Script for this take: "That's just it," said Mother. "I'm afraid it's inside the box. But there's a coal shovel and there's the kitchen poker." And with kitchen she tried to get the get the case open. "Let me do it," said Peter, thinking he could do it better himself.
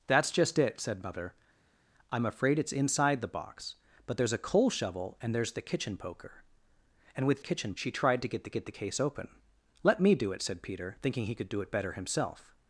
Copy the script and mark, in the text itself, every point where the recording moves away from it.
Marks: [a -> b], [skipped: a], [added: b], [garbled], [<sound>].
"That's just it," said Mother. "I'm afraid it's inside the box. But there's a coal shovel and there's the kitchen poker." And with kitchen she tried to get the get the case open. "Let me do it," said Peter, thinking he could do it better himself.